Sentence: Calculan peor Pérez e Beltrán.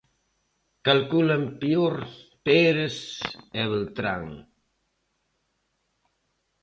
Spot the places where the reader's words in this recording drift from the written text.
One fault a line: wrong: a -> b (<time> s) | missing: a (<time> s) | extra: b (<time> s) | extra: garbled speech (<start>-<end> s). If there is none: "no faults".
no faults